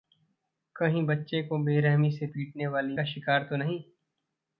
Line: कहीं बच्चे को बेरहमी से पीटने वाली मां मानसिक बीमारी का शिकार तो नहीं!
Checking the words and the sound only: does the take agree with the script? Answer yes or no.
no